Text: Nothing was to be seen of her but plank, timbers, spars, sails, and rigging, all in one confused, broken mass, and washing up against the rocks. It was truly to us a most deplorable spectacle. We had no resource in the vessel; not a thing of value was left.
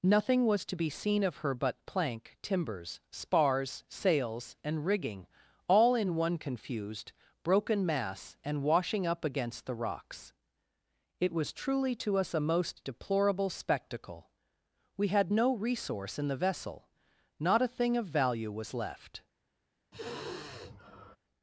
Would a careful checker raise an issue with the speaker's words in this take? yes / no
no